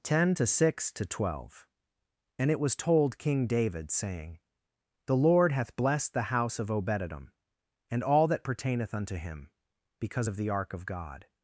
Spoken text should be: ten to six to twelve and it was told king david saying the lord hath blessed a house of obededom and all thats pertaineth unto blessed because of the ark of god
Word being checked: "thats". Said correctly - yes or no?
no